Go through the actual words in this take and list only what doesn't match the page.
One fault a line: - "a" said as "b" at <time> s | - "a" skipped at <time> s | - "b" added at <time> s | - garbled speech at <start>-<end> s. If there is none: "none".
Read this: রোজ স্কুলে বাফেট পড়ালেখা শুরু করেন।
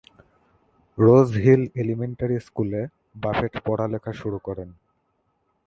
- "হিল এলিমেন্টারি" added at 1.4 s